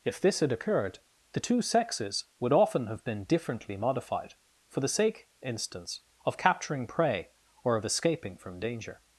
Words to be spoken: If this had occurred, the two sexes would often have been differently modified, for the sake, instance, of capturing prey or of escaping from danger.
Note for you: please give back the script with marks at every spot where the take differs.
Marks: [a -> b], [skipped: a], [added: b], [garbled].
If this had occurred, the two sexes would often have been differently modified, for the sake, instance, of capturing prey or of escaping from danger.